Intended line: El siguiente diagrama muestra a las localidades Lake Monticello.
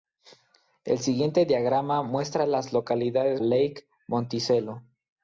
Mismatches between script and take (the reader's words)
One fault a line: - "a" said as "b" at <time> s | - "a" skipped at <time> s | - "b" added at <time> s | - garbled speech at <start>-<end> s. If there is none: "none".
none